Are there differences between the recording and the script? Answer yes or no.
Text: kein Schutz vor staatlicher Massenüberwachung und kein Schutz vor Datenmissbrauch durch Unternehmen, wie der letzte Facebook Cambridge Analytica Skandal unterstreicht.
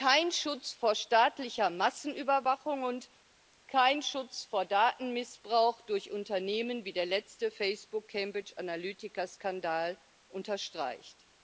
no